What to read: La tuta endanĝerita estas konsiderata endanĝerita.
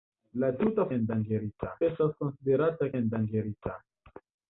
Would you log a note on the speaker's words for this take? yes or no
no